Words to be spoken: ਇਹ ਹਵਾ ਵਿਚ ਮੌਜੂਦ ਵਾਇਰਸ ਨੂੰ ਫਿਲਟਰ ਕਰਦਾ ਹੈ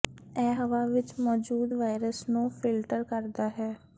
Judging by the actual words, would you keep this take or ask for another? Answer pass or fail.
pass